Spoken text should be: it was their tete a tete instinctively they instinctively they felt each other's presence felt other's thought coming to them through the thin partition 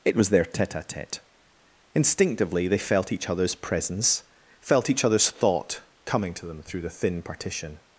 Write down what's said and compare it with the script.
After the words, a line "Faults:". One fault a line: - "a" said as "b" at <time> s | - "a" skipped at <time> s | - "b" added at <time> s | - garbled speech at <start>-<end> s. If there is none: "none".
it was their tete a tete instinctively they felt each other's presence felt each other's thought coming to them through the thin partition
Faults:
- "instinctively they" skipped at 2.8 s
- "each" added at 4.9 s